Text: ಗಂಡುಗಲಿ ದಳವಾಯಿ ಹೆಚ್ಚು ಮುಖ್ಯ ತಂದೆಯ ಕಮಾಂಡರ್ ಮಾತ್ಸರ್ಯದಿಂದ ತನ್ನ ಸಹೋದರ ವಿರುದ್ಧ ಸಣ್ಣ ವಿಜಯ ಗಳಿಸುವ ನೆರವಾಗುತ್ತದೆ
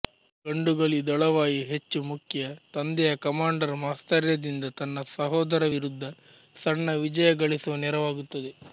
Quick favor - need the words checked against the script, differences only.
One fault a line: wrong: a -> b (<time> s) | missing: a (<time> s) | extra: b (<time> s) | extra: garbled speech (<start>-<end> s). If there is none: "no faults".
no faults